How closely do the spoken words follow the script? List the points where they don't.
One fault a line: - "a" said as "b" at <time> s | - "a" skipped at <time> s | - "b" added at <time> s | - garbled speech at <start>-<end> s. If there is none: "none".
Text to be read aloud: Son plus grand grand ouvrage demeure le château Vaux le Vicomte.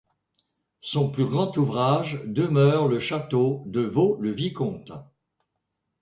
- "grand" skipped at 1.6 s
- "de" added at 3.7 s